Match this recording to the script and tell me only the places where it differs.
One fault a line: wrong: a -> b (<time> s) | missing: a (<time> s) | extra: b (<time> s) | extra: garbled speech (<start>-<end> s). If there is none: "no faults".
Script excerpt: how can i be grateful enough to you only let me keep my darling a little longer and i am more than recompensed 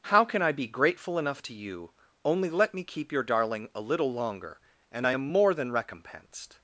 wrong: my -> your (3.1 s)